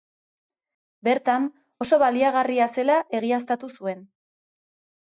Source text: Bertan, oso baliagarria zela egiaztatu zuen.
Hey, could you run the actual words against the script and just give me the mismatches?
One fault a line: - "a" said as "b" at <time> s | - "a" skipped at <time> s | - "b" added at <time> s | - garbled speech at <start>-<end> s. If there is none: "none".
none